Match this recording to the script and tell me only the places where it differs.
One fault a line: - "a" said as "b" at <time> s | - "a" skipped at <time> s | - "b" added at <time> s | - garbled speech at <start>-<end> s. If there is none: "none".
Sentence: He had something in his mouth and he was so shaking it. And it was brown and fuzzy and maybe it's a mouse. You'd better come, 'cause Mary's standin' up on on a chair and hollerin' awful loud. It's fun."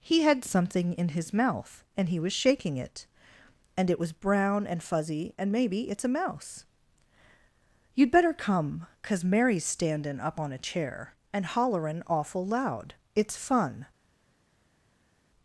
- "so" skipped at 2.3 s
- "on" skipped at 10.5 s